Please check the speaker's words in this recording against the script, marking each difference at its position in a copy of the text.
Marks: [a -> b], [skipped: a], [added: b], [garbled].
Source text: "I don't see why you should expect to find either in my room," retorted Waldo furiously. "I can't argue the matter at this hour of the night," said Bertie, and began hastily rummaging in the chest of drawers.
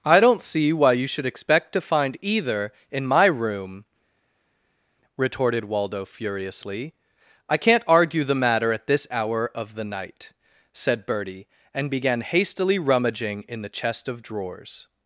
"I don't see why you should expect to find either in my room," retorted Waldo furiously. "I can't argue the matter at this hour of the night," said Bertie, and began hastily rummaging in the chest of drawers.